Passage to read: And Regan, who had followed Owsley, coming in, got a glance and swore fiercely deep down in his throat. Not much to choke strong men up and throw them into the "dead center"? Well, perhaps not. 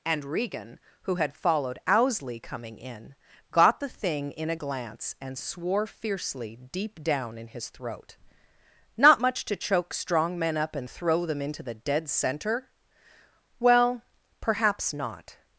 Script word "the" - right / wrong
right